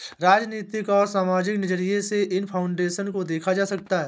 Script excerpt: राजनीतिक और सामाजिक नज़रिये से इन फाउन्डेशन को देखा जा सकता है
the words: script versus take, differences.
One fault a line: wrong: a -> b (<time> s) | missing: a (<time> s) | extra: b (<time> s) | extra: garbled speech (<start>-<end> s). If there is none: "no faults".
no faults